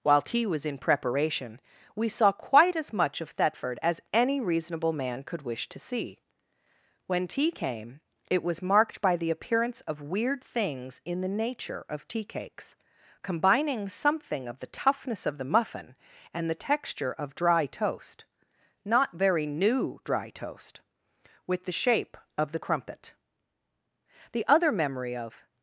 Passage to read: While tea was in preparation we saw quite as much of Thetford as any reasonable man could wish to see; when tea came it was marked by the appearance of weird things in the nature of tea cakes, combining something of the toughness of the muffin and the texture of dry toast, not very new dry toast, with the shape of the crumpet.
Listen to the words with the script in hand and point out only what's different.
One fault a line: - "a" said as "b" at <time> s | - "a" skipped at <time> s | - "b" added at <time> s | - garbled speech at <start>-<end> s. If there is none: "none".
- "The other memory of" added at 24.3 s